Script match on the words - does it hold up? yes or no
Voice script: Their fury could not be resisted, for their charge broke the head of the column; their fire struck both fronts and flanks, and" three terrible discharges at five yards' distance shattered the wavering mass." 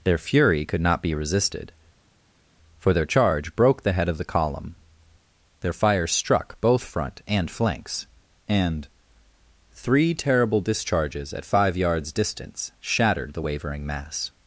no